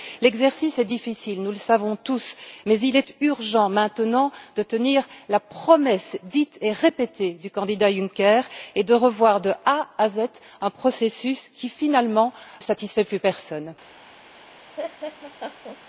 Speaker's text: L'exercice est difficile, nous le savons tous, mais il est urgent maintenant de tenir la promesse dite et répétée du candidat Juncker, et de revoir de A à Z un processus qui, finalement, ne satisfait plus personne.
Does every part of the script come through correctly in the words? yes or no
no